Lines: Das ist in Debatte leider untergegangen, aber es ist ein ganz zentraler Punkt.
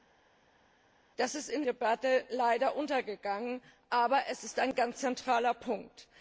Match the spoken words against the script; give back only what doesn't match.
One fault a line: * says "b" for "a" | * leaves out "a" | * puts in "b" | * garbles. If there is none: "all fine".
all fine